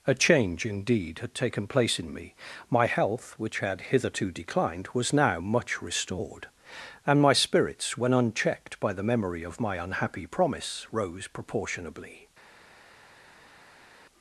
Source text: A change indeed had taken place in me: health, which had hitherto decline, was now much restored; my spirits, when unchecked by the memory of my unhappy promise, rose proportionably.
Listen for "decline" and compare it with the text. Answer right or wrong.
wrong